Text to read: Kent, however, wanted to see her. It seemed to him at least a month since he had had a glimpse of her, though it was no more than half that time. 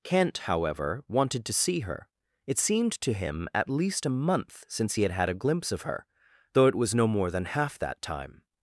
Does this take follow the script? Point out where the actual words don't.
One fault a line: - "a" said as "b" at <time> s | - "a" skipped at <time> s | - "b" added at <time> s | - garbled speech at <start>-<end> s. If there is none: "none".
none